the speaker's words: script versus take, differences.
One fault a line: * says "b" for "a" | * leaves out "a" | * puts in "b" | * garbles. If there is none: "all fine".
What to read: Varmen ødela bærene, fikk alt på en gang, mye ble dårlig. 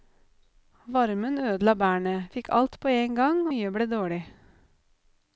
all fine